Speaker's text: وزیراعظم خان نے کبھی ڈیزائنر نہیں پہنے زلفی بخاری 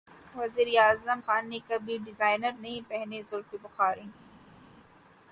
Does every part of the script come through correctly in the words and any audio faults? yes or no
yes